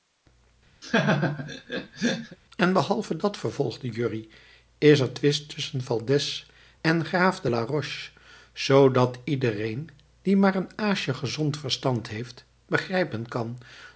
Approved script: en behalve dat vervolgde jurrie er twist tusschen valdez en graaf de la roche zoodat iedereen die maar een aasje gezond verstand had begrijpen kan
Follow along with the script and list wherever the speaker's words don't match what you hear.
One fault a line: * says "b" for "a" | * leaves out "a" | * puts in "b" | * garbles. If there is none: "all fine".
* puts in "is"
* says "heeft" for "had"